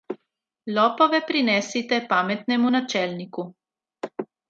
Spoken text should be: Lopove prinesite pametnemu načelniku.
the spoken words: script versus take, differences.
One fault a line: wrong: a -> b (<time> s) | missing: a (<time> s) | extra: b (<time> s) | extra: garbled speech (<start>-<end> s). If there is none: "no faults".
no faults